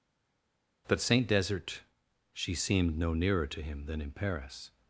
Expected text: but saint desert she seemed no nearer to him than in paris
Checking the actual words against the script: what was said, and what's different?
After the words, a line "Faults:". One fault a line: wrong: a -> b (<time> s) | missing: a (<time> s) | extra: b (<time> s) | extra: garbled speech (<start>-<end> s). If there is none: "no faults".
but saint desert she seemed no nearer to him than in paris
Faults:
no faults